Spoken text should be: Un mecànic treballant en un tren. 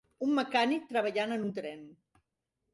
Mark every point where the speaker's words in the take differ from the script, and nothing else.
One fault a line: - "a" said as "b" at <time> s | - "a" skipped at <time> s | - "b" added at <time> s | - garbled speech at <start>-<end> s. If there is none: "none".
none